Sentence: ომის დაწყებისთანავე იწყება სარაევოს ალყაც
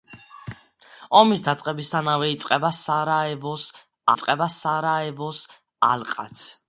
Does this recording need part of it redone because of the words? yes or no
yes